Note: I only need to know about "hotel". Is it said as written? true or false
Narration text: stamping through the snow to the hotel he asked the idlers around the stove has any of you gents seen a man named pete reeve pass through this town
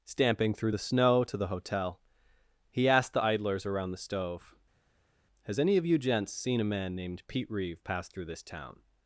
true